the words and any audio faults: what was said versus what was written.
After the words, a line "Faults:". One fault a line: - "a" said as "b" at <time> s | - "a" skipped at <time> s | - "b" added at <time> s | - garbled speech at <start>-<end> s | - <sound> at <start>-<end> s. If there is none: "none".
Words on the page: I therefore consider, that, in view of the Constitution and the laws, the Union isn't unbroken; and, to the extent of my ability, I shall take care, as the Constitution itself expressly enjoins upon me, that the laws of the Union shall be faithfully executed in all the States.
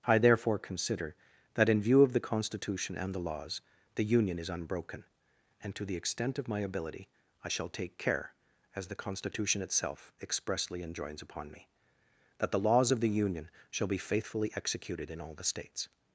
I therefore consider, that, in view of the Constitution and the laws, the Union is unbroken; and, to the extent of my ability, I shall take care, as the Constitution itself expressly enjoins upon me, that the laws of the Union shall be faithfully executed in all the States.
Faults:
- "isn't" said as "is" at 4.4 s